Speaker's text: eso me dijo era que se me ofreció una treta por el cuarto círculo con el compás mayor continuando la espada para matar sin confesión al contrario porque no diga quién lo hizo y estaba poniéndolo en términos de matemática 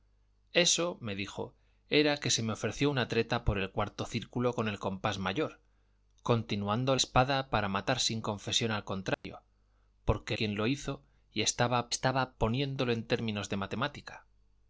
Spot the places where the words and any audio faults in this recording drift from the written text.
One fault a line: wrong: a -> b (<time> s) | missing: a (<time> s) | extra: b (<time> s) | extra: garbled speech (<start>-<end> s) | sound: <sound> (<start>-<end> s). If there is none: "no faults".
missing: la (6.9 s)
sound: dropout (9.1-9.2 s)
missing: no diga (10.4 s)
extra: estaba (11.9 s)